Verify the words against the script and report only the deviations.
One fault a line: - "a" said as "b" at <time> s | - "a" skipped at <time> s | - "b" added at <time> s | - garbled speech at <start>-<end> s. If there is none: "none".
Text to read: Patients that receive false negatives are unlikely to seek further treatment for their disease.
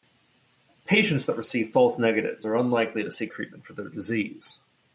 - "further" skipped at 3.3 s